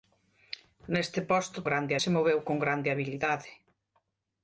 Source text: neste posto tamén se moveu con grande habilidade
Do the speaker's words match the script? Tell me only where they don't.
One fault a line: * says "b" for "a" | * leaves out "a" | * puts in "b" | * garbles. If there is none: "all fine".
* says "grande" for "tamén"